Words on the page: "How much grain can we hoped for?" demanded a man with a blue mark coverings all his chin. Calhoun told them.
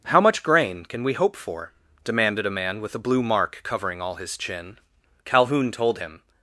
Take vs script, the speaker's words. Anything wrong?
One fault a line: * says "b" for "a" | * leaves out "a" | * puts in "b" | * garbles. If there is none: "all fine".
* says "hope" for "hoped"
* says "covering" for "coverings"
* says "him" for "them"